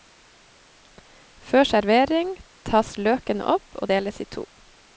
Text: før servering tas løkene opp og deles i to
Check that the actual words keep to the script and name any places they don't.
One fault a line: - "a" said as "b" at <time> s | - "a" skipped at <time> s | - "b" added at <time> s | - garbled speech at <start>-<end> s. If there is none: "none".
none